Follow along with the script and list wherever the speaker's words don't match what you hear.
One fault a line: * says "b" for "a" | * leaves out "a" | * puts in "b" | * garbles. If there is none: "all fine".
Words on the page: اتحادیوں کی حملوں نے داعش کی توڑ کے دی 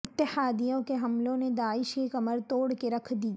* says "کے" for "کی"
* puts in "کمر"
* puts in "رکھ"